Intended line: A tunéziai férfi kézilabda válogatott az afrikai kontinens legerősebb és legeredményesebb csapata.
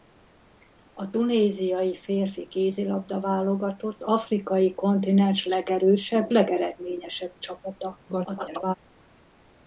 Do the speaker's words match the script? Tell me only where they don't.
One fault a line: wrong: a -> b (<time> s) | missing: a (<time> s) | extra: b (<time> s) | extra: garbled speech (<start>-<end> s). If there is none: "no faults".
missing: az (4.0 s)
missing: és (6.3 s)
extra: garbled speech (8.1-8.7 s)